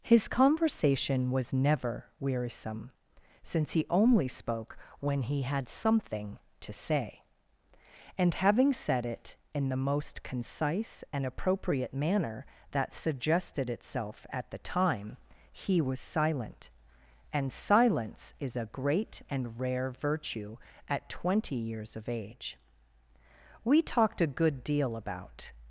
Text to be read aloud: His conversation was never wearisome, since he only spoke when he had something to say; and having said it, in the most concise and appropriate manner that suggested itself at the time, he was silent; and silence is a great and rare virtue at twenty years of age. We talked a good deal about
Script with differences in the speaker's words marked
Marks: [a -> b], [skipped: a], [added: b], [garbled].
His conversation was never wearisome, since he only spoke when he had something to say; and having said it, in the most concise and appropriate manner that suggested itself at the time, he was silent; and silence is a great and rare virtue at twenty years of age. We talked a good deal about